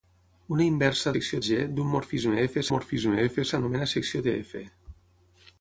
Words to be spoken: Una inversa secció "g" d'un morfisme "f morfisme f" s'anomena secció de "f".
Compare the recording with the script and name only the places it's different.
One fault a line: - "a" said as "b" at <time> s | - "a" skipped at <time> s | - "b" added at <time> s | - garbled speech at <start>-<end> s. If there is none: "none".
none